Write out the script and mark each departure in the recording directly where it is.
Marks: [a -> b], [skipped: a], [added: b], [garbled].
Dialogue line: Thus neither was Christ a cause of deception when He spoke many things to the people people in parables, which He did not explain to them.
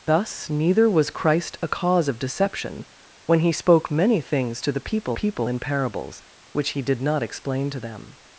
Thus neither was Christ a cause of deception when He spoke many things to the people people in parables, which He did not explain to them.